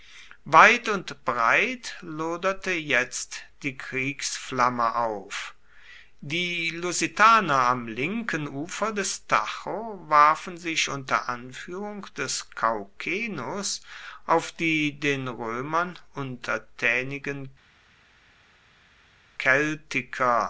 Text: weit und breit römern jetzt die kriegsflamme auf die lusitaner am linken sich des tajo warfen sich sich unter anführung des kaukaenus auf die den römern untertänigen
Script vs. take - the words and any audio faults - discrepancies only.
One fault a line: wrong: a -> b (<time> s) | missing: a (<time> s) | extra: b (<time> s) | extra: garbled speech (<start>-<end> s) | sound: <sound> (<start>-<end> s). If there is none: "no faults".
wrong: römern -> loderte (2.0 s)
wrong: sich -> ufer (8.5 s)
missing: sich (10.9 s)